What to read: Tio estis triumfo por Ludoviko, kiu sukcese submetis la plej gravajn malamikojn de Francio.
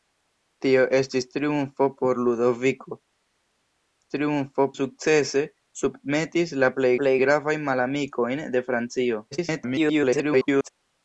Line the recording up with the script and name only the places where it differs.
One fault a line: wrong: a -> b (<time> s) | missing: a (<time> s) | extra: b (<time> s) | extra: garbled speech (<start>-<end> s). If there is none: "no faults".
wrong: kiu -> triumfo (4.1 s)
extra: plej (7.0 s)
extra: garbled speech (9.3-10.7 s)